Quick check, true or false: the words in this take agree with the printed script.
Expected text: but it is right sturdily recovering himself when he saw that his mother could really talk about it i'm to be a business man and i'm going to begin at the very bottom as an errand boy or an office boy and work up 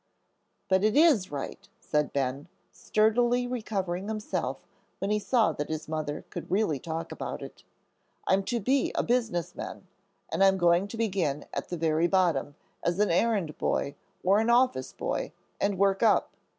false